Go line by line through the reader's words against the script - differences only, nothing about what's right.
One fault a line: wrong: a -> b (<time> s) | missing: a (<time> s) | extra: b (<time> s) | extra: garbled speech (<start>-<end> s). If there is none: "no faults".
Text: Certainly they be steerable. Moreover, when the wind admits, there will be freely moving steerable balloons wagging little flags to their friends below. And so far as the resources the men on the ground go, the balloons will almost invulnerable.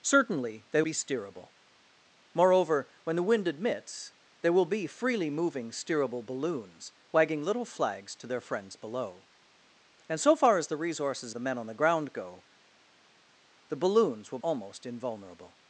no faults